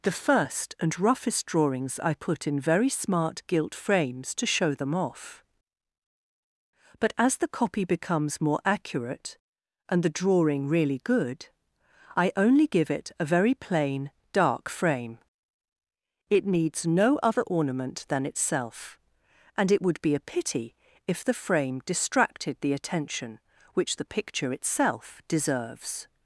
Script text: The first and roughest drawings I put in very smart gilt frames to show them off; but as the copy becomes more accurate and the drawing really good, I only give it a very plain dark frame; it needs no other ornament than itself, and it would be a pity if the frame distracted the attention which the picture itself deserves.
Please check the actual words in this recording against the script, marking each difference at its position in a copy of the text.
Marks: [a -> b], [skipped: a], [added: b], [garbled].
The first and roughest drawings I put in very smart gilt frames to show them off; but as the copy becomes more accurate and the drawing really good, I only give it a very plain dark frame; it needs no other ornament than itself, and it would be a pity if the frame distracted the attention which the picture itself deserves.